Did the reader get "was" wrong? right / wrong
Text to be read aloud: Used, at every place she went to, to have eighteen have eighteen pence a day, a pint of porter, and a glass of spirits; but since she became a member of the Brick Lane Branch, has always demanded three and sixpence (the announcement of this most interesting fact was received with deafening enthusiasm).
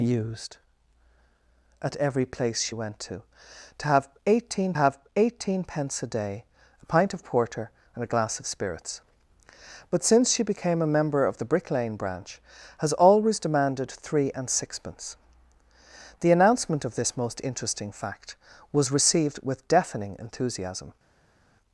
right